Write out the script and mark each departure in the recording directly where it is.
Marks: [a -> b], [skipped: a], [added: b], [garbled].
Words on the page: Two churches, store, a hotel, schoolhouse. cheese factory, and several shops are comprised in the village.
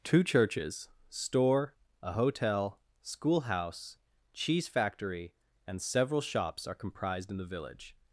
Two churches, store, a hotel, schoolhouse. cheese factory, and several shops are comprised in the village.